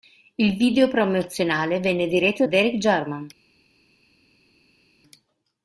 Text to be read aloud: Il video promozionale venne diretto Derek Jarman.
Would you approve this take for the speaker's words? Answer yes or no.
yes